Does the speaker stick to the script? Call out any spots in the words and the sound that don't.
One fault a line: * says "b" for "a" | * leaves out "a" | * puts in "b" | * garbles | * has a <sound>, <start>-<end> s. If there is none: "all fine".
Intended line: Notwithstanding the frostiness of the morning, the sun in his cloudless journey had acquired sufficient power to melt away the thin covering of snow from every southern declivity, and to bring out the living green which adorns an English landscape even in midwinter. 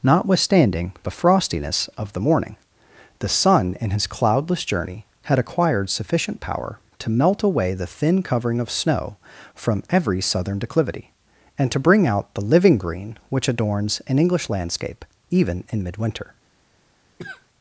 * has a cough, 17.2-17.5 s